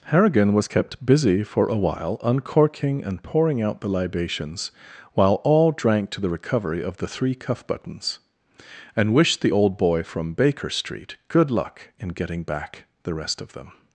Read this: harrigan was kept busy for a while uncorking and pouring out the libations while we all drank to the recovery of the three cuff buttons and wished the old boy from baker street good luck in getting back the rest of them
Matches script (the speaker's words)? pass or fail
fail